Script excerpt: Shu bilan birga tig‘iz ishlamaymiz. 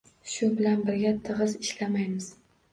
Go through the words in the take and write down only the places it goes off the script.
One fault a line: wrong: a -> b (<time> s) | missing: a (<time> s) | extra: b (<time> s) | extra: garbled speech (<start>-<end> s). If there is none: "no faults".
no faults